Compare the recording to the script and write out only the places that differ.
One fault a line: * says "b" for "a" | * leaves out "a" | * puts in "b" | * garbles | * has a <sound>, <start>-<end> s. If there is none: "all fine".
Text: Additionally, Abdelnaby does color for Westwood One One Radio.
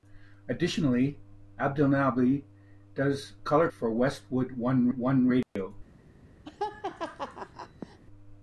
* has a dropout, 5.4-5.6 s
* has a laugh, 6.4-8.0 s